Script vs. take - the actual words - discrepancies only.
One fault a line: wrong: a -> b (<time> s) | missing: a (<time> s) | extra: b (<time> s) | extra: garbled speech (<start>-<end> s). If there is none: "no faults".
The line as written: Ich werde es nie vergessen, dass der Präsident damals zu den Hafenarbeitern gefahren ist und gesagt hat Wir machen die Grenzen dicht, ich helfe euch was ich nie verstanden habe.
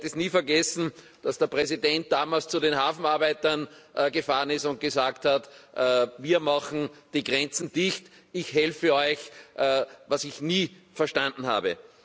no faults